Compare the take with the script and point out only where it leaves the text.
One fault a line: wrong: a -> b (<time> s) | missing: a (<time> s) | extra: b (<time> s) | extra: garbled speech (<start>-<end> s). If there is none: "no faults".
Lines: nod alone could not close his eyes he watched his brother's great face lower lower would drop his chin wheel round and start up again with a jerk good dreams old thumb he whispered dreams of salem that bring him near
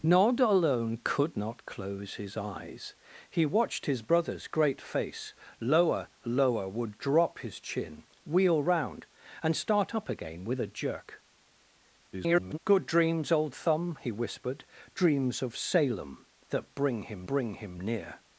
extra: garbled speech (12.1-12.6 s)
extra: bring him (17.3 s)